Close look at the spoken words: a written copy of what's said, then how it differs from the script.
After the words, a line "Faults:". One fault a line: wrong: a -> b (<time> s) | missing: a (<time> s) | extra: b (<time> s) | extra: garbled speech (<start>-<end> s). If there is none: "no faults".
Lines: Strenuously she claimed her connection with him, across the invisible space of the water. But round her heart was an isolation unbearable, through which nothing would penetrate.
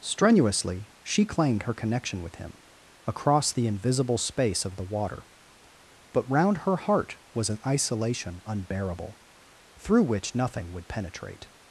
Strenuously she claimed her connection with him, across the invisible space of the water. But round her heart was an isolation unbearable, through which nothing would penetrate.
Faults:
no faults